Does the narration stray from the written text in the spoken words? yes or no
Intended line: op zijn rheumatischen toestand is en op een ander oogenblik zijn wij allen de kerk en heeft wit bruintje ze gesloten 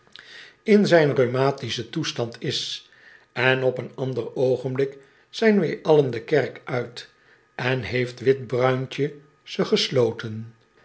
yes